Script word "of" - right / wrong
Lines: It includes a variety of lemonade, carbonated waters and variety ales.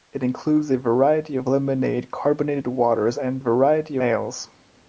right